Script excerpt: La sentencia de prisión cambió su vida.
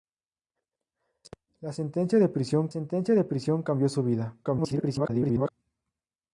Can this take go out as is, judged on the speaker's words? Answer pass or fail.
fail